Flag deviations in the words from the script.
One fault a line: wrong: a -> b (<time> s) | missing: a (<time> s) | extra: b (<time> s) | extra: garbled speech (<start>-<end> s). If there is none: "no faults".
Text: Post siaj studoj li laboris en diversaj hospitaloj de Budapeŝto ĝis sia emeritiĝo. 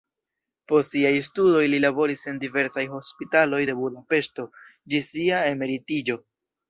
no faults